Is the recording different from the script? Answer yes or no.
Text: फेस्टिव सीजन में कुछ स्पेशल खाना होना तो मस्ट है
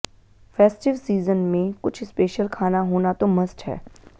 no